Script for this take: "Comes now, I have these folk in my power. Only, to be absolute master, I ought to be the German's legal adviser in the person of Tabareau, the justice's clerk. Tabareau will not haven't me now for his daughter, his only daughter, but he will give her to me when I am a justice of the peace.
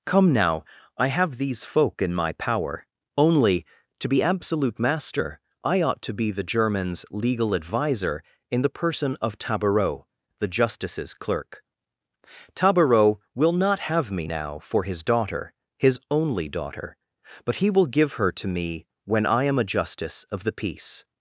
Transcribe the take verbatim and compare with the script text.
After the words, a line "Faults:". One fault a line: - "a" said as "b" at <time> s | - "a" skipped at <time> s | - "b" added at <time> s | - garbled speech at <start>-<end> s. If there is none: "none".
"Come now, I have these folk in my power. Only, to be absolute master, I ought to be the German's legal adviser in the person of Tabareau, the justice's clerk. Tabareau will not have me now for his daughter, his only daughter, but he will give her to me when I am a justice of the peace.
Faults:
- "Comes" said as "Come" at 0.1 s
- "haven't" said as "have" at 13.8 s